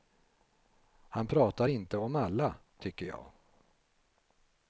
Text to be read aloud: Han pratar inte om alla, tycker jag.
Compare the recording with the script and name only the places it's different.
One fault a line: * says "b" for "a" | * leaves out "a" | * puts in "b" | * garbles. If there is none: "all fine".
all fine